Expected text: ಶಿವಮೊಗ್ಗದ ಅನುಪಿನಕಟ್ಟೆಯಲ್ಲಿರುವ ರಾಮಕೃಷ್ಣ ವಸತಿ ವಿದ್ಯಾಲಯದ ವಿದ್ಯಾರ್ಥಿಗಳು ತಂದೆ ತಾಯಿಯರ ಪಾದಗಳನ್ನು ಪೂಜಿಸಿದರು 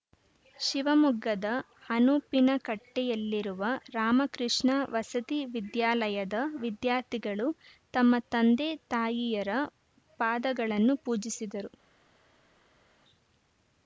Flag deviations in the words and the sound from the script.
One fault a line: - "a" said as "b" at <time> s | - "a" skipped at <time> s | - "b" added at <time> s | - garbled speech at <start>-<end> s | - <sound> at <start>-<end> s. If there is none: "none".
- "ತಮ್ಮ" added at 7.9 s